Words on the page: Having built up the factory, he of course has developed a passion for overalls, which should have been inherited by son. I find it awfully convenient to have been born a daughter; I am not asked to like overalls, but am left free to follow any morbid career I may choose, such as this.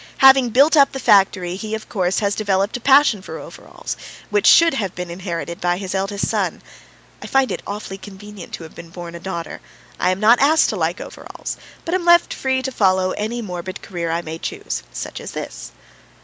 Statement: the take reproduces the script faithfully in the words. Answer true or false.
false